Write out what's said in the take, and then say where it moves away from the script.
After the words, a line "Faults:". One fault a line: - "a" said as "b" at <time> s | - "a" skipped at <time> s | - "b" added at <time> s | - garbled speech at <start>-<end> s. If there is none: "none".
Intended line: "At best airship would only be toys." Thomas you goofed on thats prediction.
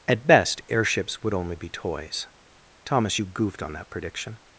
"At best airships would only be toys." Thomas you goofed on that prediction.
Faults:
- "airship" said as "airships" at 0.7 s
- "thats" said as "that" at 3.7 s